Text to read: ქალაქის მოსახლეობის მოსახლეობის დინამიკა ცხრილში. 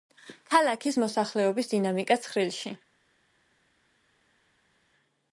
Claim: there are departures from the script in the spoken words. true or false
true